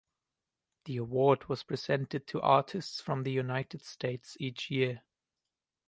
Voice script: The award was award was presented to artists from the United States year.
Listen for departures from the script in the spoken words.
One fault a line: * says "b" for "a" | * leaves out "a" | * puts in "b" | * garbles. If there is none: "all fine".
* leaves out "award was"
* puts in "each"